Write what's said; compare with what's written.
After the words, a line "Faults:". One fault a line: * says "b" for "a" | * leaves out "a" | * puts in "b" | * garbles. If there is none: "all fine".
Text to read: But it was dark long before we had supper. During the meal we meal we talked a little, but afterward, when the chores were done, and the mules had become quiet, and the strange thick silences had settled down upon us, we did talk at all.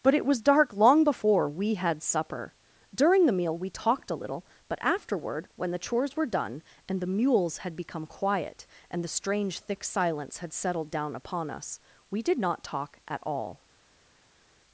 But it was dark long before we had supper. During the meal we talked a little, but afterward, when the chores were done, and the mules had become quiet, and the strange thick silence had settled down upon us, we did not talk at all.
Faults:
* leaves out "meal we"
* says "silence" for "silences"
* puts in "not"